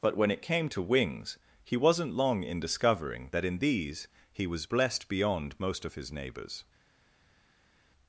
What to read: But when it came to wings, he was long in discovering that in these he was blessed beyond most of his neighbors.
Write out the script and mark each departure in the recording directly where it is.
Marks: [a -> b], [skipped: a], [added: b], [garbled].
But when it came to wings, he [was -> wasn't] long in discovering that in these he was blessed beyond most of his neighbors.